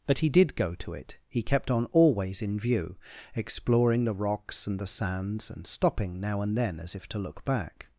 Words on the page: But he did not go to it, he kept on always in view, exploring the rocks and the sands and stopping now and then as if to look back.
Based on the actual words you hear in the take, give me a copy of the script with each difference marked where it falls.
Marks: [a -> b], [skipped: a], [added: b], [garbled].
But he did [skipped: not] go to it, he kept on always in view, exploring the rocks and the sands and stopping now and then as if to look back.